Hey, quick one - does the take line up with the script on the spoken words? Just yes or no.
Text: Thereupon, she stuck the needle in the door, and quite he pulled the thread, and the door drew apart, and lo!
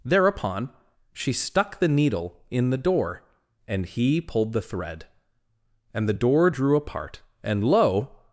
no